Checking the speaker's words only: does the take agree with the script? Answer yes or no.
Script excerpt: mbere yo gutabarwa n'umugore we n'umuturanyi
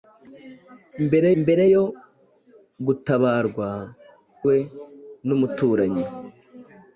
no